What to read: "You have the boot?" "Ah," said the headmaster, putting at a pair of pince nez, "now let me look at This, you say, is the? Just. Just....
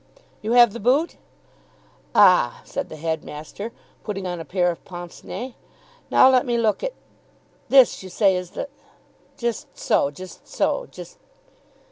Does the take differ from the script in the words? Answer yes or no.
yes